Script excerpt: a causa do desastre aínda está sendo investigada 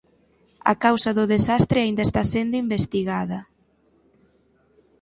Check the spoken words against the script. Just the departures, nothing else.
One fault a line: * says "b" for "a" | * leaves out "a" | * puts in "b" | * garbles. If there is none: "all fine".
all fine